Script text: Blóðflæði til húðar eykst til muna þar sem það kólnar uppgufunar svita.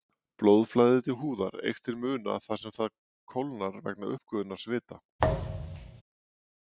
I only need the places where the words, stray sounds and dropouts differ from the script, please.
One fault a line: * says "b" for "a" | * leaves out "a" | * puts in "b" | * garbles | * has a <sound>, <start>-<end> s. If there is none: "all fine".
* puts in "vegna"
* has a thud, 5.2-6.0 s